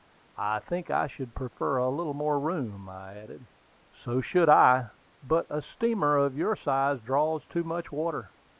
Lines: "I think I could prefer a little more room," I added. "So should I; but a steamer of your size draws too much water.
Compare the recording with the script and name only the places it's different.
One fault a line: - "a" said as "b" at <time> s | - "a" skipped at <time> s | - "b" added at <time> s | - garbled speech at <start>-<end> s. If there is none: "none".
- "could" said as "should" at 1.1 s